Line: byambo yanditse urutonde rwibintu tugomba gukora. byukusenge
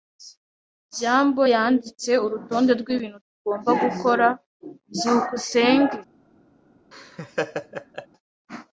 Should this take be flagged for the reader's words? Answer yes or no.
no